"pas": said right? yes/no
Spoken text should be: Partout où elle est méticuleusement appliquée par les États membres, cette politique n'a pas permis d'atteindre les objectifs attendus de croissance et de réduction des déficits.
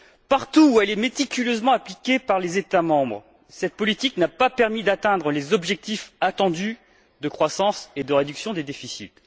yes